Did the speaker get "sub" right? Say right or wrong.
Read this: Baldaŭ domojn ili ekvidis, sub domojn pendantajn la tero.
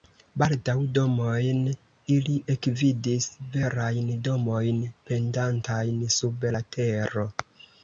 wrong